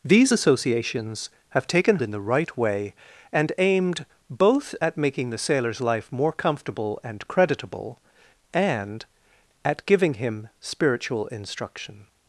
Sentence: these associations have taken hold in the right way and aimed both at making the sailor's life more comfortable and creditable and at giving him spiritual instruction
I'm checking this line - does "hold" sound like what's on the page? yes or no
no